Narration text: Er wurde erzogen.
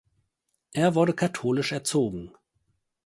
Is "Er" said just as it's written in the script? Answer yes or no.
yes